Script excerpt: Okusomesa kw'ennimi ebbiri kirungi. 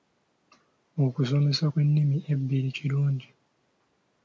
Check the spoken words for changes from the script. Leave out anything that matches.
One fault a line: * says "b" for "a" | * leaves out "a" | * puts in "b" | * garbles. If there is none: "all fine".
all fine